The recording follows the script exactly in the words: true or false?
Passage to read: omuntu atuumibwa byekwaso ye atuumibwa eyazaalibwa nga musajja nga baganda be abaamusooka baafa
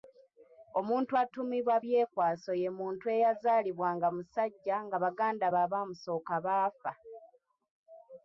false